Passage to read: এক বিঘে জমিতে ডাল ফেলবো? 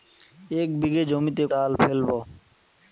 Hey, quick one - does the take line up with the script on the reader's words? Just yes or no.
yes